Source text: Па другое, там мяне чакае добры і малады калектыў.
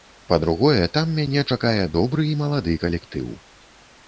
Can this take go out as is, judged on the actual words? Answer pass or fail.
pass